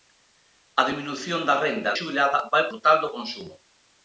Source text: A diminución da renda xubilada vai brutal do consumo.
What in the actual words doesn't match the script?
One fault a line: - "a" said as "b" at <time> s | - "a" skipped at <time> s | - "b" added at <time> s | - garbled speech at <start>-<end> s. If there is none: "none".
none